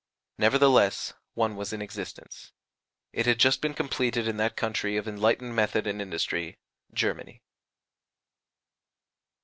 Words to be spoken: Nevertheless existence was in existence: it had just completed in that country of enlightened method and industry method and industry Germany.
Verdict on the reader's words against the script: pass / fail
fail